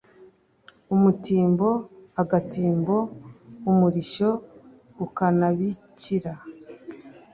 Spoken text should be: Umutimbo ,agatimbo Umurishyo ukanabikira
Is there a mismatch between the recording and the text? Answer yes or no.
no